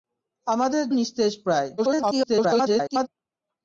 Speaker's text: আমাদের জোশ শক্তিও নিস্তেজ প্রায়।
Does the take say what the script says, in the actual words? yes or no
no